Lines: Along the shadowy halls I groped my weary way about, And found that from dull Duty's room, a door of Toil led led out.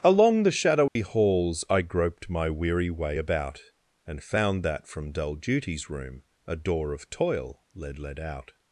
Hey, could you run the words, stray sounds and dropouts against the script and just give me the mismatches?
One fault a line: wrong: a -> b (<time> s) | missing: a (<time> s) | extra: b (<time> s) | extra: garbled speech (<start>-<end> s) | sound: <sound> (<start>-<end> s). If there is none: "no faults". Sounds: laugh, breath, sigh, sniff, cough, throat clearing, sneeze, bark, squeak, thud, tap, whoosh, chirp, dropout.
sound: dropout (0.9-1.0 s)